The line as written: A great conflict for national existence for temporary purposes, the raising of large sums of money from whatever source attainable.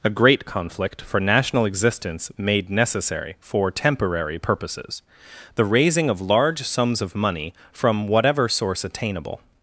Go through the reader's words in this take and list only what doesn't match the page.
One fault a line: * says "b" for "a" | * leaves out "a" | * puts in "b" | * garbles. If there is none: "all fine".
* puts in "made necessary"